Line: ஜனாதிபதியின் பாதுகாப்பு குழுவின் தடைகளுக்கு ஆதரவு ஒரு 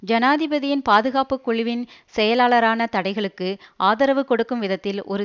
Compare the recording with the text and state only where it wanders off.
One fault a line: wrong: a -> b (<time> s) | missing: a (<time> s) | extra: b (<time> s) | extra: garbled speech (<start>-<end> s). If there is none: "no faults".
extra: செயலாளரான (2.1 s)
extra: கொடுக்கும் விதத்தில் (4.2 s)